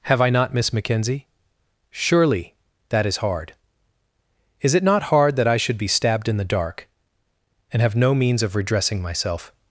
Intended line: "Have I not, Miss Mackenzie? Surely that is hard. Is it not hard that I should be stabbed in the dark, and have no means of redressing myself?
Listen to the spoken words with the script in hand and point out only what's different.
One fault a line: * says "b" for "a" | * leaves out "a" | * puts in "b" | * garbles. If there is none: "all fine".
all fine